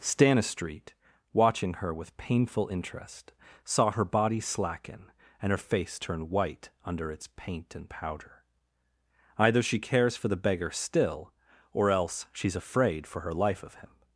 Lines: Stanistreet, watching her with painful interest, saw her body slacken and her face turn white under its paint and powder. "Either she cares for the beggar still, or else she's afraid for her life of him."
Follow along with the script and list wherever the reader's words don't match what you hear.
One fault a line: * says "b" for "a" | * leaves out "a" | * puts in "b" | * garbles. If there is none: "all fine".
all fine